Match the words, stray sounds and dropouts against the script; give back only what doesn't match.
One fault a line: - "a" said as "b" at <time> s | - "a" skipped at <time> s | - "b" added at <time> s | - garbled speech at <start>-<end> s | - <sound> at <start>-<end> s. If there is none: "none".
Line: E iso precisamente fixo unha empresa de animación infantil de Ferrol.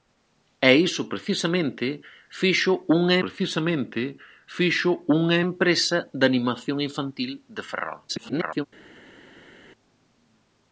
- "precisamente fixo unha" added at 3.2 s
- garbled speech at 8.1-8.7 s